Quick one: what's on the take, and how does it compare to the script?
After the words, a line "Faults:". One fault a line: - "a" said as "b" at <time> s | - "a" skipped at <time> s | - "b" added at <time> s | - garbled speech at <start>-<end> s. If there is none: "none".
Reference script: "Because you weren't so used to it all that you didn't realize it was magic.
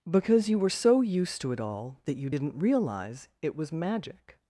"Because you were so used to it all that you didn't realize it was magic.
Faults:
- "weren't" said as "were" at 0.6 s